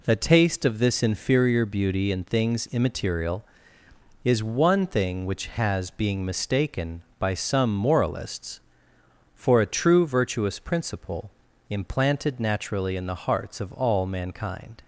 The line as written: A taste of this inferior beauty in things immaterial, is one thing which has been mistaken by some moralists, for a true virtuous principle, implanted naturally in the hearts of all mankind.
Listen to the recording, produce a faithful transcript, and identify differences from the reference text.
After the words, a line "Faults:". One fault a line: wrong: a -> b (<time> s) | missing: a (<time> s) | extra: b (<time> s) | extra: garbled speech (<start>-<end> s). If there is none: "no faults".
A taste of this inferior beauty in things immaterial, is one thing which has being mistaken by some moralists, for a true virtuous principle, implanted naturally in the hearts of all mankind.
Faults:
wrong: been -> being (5.9 s)